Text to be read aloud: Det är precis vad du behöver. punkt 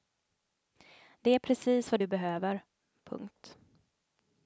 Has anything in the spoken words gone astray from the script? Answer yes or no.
no